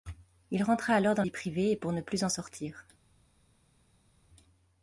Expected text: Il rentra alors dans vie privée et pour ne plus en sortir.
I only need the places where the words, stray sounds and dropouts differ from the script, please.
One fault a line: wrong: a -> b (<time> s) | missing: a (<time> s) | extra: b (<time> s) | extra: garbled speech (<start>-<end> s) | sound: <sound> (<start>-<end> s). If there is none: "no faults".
no faults